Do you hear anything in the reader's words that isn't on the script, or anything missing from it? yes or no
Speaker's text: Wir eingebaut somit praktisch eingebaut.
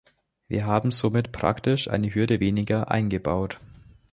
yes